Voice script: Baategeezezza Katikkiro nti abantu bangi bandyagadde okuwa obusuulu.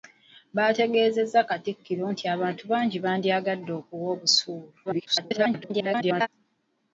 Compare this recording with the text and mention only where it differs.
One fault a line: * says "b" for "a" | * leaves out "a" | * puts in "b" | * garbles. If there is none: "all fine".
* garbles